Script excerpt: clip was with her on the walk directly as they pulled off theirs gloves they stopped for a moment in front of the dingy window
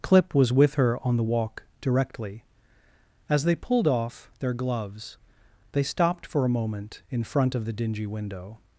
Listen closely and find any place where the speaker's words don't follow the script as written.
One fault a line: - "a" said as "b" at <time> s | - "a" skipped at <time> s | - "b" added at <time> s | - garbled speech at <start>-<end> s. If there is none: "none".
- "theirs" said as "their" at 4.4 s